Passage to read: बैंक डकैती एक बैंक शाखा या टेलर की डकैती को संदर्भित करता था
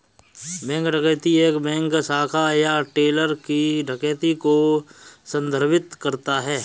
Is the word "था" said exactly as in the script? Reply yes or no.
no